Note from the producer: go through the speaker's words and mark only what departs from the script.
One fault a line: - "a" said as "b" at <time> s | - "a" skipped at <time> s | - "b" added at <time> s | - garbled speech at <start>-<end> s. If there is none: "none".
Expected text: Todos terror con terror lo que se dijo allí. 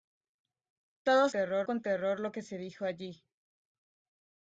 none